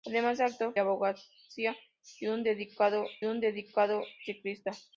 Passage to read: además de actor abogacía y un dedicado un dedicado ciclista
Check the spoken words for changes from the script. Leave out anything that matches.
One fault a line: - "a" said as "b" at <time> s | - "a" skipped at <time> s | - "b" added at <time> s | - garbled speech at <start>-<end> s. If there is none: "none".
none